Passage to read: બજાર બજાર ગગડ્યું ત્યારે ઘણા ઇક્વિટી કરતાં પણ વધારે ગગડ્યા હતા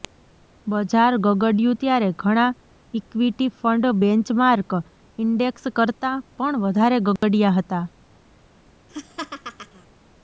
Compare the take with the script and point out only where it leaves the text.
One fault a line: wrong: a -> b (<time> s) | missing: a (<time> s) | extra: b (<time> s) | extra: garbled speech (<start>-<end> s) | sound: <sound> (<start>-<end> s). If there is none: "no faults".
missing: બજાર (1.1 s)
extra: ફંડ બેન્ચમાર્ક ઇન્ડેક્સ (3.6 s)
sound: dropout (7.2-7.2 s)
sound: laugh (8.9-9.9 s)